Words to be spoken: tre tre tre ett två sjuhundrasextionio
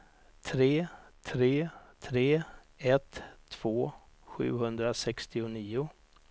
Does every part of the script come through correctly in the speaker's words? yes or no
yes